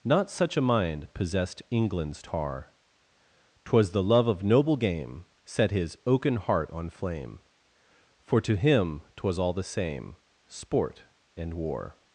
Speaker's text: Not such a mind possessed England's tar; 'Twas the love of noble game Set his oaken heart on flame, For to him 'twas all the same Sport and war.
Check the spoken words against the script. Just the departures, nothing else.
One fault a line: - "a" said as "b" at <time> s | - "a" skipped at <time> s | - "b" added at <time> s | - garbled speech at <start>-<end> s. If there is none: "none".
none